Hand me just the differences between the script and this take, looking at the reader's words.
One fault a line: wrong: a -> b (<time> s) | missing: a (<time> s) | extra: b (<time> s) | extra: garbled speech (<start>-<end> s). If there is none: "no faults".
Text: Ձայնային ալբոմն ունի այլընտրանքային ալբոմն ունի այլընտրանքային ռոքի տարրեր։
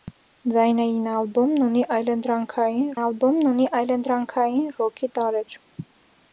no faults